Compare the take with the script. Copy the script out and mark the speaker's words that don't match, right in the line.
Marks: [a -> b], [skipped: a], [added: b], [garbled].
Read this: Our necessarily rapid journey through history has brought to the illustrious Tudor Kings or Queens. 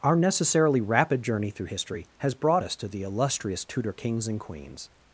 Our necessarily rapid journey through history has brought [added: us] to the illustrious Tudor Kings [or -> and] Queens.